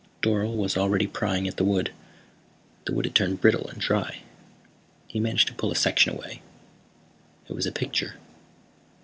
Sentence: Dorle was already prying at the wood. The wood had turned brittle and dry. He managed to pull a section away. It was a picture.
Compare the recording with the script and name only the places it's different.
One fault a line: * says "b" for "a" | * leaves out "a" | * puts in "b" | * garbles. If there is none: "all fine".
all fine